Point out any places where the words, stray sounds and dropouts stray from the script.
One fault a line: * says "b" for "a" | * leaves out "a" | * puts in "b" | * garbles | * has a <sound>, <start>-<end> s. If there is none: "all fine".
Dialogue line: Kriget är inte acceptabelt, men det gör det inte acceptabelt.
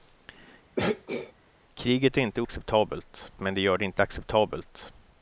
* has a throat clearing, 0.8-1.3 s